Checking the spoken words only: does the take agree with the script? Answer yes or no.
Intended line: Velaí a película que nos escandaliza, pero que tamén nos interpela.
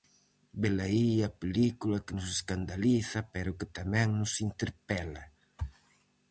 yes